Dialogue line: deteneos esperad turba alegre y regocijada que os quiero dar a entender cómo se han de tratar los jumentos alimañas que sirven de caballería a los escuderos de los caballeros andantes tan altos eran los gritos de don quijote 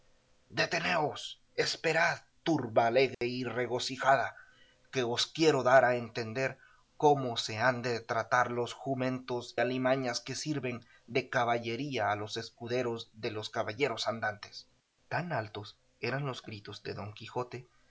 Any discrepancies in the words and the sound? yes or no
yes